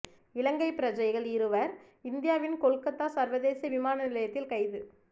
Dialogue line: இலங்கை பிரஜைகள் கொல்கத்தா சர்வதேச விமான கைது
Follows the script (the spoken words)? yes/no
no